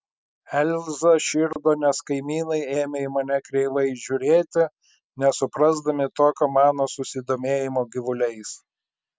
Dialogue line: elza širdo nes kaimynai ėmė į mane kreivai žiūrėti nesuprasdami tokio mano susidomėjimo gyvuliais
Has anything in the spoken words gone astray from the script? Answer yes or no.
no